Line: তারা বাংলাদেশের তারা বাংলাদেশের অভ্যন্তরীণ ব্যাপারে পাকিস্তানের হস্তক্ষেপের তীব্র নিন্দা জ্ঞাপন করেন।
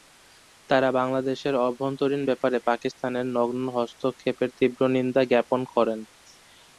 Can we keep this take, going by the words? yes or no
no